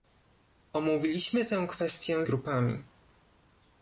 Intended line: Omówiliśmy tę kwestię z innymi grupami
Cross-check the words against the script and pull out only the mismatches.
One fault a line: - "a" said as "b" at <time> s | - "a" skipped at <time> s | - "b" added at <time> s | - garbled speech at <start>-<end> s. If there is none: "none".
- "z innymi" skipped at 2.2 s